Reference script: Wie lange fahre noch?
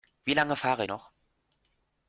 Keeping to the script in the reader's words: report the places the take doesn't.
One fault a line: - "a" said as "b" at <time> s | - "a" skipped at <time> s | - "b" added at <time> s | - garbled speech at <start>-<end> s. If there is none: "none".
none